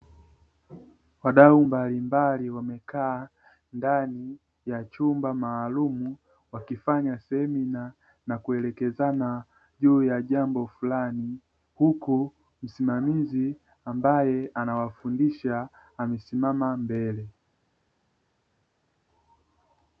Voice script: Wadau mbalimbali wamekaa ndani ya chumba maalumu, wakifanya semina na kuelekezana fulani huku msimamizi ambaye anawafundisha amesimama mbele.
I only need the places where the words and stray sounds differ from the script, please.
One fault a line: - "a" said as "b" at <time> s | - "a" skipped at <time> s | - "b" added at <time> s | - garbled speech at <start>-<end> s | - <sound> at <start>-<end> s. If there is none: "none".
- "juu ya jambo" added at 9.8 s